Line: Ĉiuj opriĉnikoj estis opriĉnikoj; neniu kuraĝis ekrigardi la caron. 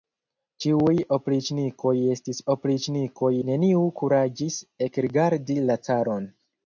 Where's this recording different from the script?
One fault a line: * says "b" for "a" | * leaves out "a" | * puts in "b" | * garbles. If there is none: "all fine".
all fine